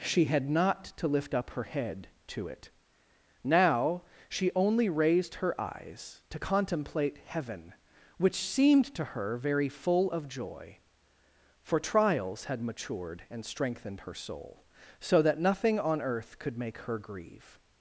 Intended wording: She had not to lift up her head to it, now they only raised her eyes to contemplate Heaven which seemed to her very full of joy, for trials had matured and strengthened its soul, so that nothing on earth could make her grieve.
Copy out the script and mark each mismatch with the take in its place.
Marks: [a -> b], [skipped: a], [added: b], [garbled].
She had not to lift up her head to it, now [they -> she] only raised her eyes to contemplate Heaven which seemed to her very full of joy, for trials had matured and strengthened [its -> her] soul, so that nothing on earth could make her grieve.